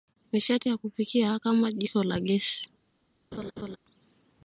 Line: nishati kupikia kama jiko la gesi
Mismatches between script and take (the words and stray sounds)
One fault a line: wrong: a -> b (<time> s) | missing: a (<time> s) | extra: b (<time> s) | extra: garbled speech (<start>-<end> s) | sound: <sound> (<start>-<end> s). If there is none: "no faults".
extra: ya (0.7 s)
sound: laugh (3.3-3.8 s)